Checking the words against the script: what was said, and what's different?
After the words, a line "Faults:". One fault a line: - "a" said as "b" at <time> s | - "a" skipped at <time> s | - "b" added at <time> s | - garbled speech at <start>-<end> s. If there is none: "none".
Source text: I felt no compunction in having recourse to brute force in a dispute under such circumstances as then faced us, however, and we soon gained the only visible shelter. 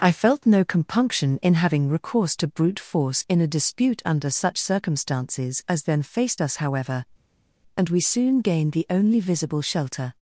I felt no compunction in having recourse to brute force in a dispute under such circumstances as then faced us, however, and we soon gained the only visible shelter.
Faults:
none